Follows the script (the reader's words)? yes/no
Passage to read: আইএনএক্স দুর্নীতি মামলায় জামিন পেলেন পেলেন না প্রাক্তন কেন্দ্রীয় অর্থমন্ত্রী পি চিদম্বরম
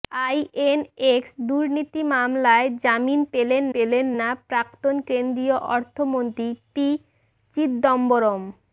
yes